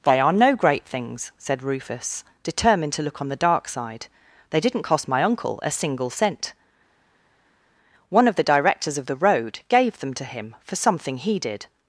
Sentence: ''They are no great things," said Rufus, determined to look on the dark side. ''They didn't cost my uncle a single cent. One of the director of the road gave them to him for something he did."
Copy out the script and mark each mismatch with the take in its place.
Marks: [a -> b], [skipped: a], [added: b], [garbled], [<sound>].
''They are no great things," said Rufus, determined to look on the dark side. ''They didn't cost my uncle a single cent. One of the [director -> directors] of the road gave them to him for something he did."